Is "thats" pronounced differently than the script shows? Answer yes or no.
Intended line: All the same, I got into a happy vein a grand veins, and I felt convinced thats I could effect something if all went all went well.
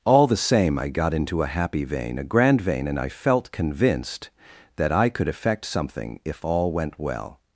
yes